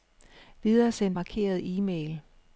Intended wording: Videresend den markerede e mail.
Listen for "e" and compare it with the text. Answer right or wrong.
right